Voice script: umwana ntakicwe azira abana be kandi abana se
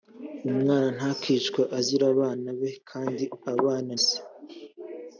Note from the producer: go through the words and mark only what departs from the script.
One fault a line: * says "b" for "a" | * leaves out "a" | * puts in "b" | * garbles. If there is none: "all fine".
all fine